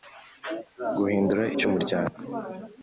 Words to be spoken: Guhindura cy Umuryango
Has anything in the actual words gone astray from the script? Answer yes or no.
no